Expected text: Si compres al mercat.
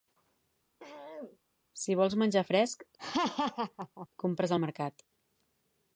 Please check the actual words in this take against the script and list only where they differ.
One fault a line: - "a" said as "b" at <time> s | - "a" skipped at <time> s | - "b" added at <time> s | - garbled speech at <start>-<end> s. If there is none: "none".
- "vols menjar fresc" added at 2.0 s